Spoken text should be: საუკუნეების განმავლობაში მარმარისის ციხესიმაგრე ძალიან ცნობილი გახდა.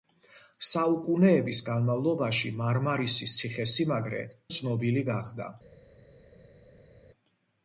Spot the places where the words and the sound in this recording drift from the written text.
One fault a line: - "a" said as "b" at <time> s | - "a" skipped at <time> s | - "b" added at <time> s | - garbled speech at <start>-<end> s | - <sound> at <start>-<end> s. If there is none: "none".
- "ძალიან" skipped at 4.2 s